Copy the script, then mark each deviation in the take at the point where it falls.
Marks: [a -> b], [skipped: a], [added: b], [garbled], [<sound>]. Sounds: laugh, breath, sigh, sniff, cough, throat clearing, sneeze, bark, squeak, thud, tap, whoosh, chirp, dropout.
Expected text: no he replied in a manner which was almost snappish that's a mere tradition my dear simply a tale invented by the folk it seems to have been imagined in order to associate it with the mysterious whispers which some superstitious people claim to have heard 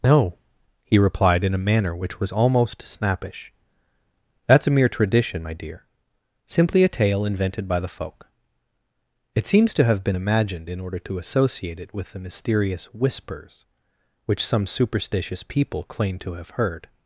no he replied in a manner which was almost snappish that's a mere tradition my dear simply a tale invented by the folk it seems to have been imagined in order to associate it with the mysterious whispers which some superstitious people claim to have heard